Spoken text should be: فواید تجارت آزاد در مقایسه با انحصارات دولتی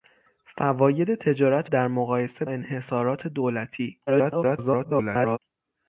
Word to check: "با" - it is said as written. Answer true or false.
false